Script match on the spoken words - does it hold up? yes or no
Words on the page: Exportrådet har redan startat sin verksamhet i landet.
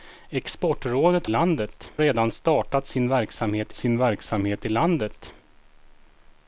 no